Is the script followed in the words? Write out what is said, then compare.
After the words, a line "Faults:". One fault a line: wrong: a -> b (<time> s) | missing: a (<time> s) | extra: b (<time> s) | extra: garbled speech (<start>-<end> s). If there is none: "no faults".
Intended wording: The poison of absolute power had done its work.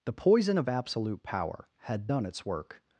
The poison of absolute power had done its work.
Faults:
no faults